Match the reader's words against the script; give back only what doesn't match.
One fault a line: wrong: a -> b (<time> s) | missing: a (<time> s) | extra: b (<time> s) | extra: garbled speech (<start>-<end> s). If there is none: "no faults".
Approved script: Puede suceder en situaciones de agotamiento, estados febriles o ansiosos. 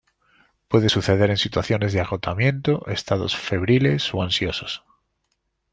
no faults